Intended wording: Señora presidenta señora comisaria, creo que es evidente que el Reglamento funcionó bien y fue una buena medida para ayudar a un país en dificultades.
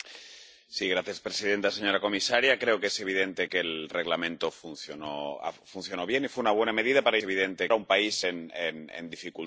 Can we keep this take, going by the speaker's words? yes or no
no